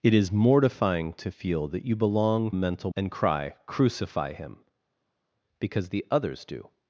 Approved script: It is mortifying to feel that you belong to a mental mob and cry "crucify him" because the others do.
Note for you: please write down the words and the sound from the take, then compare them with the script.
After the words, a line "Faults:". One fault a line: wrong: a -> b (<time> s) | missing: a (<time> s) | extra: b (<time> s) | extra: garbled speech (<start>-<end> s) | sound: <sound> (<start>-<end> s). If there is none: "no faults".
It is mortifying to feel that you belong a mental and cry "crucify him" because the others do.
Faults:
missing: to (2.5 s)
missing: mob (2.9 s)